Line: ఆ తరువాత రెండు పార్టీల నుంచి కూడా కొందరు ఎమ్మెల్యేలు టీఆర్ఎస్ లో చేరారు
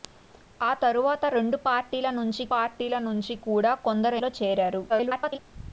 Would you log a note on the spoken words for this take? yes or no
yes